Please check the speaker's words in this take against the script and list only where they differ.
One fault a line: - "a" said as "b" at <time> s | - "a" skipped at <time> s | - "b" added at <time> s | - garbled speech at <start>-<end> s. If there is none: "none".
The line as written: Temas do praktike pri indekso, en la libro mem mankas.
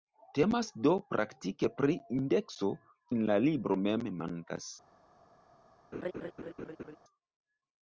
none